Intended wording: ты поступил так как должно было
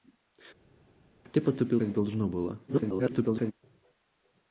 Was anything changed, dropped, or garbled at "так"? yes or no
yes